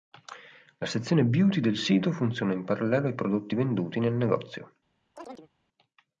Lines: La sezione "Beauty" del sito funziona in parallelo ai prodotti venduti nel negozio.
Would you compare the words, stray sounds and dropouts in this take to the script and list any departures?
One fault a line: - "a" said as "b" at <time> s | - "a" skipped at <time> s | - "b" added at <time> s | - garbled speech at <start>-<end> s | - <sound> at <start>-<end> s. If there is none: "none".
- chirp at 5.2-5.5 s